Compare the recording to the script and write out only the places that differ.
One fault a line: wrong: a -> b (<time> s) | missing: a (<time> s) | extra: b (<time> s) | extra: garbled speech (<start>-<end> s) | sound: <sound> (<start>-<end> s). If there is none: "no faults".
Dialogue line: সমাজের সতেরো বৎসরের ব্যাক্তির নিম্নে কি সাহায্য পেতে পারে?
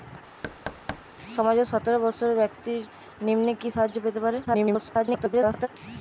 sound: thud (0.4-1.0 s)
extra: garbled speech (4.4-5.7 s)